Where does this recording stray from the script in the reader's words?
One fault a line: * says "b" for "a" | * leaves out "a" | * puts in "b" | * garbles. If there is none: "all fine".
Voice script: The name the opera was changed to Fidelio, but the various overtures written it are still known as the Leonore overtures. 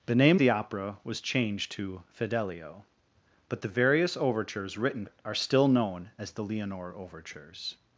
all fine